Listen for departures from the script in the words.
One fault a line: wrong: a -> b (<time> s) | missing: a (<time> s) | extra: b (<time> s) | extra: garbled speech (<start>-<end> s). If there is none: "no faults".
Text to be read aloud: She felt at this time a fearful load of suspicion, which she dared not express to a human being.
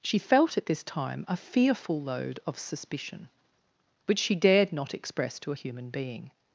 no faults